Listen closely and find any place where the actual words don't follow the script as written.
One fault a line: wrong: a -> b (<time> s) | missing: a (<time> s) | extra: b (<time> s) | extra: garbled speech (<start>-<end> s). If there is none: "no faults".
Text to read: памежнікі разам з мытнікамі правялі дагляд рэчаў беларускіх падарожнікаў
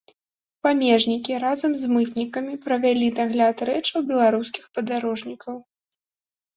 no faults